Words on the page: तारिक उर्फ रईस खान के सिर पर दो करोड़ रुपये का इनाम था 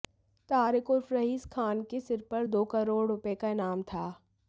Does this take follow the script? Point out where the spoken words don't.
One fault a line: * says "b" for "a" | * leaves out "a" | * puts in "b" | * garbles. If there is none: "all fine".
all fine